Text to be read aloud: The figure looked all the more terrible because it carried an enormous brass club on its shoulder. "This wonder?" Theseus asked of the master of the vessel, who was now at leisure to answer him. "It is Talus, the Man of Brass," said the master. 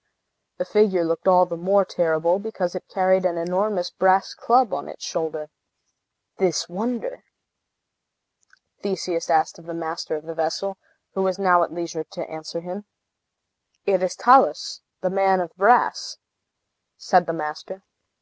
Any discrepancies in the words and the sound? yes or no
no